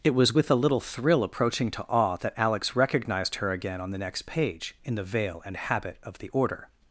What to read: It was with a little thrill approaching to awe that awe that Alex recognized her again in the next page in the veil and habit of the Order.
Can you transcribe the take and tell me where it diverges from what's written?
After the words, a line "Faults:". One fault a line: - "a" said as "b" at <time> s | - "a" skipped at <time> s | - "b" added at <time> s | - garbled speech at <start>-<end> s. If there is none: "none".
It was with a little thrill approaching to awe that Alex recognized her again on the next page in the veil and habit of the Order.
Faults:
- "awe that" skipped at 2.3 s
- "in" said as "on" at 3.8 s